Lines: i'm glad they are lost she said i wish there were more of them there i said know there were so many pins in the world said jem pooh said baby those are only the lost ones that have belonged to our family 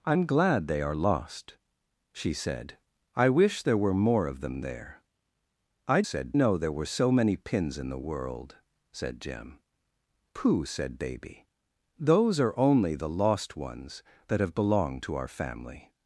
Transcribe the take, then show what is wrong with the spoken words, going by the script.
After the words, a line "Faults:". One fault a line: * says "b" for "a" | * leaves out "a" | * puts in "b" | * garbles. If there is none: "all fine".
i'm glad they are lost she said i wish there were more of them there i said know there were so many pins in the world said jem pooh said baby those are only the lost ones that have belonged to our family
Faults:
all fine